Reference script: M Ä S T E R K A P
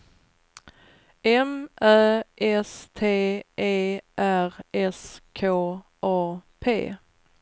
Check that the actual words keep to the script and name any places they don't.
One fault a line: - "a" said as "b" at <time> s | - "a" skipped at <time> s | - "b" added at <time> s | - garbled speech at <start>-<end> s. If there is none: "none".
- "S" added at 4.7 s